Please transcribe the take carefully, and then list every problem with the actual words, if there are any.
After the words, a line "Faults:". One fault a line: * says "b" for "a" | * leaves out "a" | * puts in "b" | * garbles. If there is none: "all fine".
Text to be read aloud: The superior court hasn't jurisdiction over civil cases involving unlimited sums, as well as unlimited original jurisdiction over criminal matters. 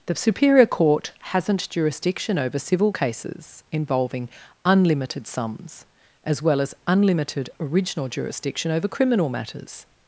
The superior court hasn't jurisdiction over civil cases involving unlimited sums, as well as unlimited original jurisdiction over criminal matters.
Faults:
all fine